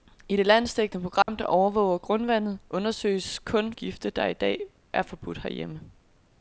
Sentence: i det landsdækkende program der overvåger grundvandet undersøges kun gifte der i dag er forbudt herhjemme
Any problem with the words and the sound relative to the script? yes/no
yes